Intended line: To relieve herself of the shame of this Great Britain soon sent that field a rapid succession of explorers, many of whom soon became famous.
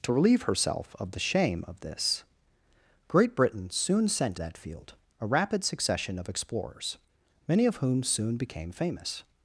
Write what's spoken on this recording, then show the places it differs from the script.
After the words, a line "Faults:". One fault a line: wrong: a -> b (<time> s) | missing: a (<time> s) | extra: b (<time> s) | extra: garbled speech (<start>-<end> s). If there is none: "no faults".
To relieve herself of the shame of this Great Britain soon sent that field a rapid succession of explorers, many of whom soon became famous.
Faults:
no faults